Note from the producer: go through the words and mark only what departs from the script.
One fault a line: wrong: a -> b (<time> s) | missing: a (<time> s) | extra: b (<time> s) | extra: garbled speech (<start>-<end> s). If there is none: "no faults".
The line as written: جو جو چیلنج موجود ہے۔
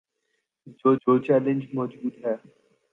no faults